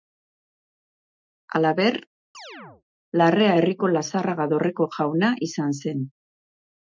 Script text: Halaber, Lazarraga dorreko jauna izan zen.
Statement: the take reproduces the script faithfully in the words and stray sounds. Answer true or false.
false